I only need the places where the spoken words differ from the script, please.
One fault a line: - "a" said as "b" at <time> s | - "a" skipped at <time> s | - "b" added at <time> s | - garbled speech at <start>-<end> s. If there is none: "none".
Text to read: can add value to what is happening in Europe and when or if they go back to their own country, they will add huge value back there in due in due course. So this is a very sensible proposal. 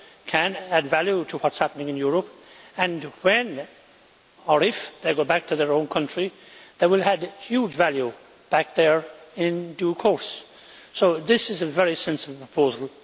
- "in due" skipped at 9.9 s